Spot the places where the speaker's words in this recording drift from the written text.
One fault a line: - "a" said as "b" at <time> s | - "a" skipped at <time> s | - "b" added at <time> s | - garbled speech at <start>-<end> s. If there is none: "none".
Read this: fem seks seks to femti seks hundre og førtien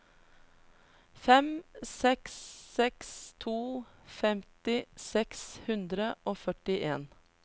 none